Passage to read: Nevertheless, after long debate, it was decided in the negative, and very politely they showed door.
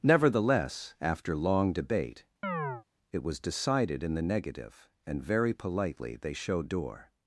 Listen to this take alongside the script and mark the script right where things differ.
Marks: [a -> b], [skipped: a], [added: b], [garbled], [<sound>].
Nevertheless, after long debate, [chirp] it was decided in the negative, and very politely they showed door.